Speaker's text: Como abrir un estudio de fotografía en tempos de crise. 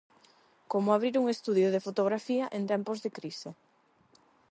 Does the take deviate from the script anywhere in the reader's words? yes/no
no